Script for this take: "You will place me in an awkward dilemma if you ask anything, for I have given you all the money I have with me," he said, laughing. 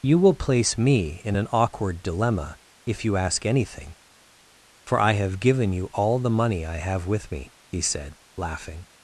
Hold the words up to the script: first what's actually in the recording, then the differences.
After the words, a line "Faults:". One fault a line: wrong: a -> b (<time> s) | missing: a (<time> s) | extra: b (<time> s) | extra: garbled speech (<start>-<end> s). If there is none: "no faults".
"You will place me in an awkward dilemma if you ask anything, for I have given you all the money I have with me," he said, laughing.
Faults:
no faults